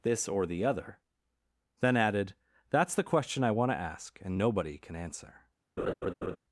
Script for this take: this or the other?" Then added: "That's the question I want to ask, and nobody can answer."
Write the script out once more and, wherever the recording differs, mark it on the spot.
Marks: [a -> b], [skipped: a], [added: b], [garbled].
this or the other?" Then added: "That's the question I want to ask, and nobody can answer."